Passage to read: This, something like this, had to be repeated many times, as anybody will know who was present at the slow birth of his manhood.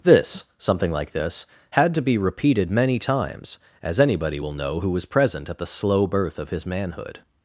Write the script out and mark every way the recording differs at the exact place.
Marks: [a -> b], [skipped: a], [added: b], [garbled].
This, something like this, had to be repeated many times, as anybody will know who was present at the slow birth of his manhood.